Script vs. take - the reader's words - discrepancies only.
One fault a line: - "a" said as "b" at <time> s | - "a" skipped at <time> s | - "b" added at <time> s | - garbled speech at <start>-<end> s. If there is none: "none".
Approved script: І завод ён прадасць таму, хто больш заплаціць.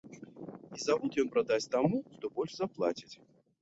none